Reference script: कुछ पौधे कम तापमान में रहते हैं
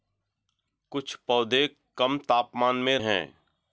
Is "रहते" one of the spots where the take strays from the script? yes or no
yes